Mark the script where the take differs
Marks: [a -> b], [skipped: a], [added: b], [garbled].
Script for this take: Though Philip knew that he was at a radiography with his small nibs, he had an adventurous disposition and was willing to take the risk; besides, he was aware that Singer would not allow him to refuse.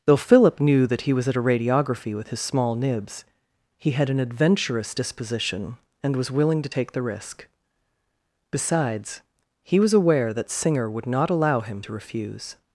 Though Philip knew that he was at a radiography with his small nibs, he had an adventurous disposition and was willing to take the risk; besides, he was aware that Singer would not allow him to refuse.